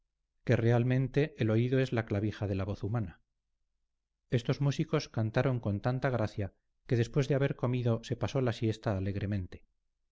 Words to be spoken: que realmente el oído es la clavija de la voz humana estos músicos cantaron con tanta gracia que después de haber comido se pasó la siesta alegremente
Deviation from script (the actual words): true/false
false